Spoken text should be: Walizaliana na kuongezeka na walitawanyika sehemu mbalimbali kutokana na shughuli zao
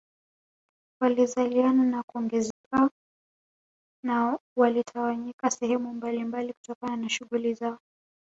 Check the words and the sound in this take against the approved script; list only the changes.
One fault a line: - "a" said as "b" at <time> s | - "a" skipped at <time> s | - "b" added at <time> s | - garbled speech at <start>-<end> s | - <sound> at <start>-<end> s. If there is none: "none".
- dropout at 2.5-2.6 s